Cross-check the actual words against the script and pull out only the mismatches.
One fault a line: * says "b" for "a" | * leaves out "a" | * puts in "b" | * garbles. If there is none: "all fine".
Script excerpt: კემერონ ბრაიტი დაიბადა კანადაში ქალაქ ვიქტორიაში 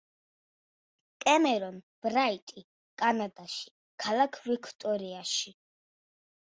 * leaves out "დაიბადა"